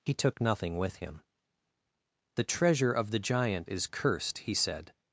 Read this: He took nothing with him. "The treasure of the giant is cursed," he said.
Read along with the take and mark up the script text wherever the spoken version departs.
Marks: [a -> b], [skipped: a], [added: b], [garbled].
He took nothing with him. "The treasure of the giant is cursed," he said.